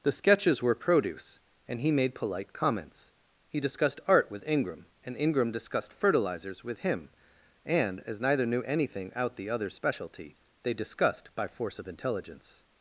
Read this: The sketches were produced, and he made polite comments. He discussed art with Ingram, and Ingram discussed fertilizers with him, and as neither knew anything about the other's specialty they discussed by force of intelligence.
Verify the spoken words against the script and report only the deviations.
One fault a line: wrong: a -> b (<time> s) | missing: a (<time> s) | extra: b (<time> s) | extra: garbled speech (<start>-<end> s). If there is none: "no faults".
wrong: produced -> produce (0.7 s)
wrong: about -> out (9.2 s)